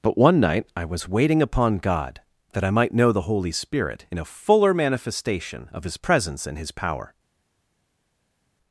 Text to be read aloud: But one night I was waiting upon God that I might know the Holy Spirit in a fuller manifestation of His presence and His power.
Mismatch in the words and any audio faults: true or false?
false